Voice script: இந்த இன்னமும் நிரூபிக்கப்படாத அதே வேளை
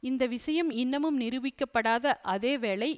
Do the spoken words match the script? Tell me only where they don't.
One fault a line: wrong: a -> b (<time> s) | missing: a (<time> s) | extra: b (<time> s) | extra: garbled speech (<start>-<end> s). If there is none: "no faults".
extra: விஷயம் (0.3 s)